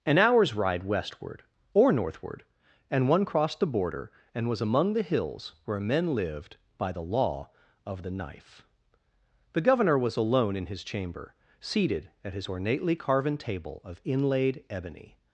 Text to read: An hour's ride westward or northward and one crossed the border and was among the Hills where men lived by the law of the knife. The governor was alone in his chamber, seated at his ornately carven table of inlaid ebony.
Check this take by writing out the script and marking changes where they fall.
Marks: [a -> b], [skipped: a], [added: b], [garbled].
An hour's ride westward or northward and one crossed the border and was among the Hills where men lived by the law of the knife. The governor was alone in his chamber, seated at his ornately carven table of inlaid ebony.